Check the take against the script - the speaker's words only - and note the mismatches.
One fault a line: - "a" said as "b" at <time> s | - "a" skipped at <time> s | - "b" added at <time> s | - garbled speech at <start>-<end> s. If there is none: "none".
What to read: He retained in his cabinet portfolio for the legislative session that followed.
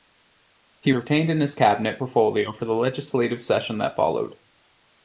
none